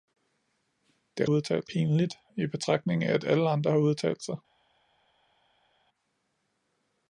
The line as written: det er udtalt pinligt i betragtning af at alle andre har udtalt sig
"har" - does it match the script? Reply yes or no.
yes